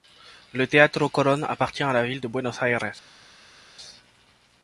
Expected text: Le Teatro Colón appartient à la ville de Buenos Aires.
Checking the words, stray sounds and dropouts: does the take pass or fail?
pass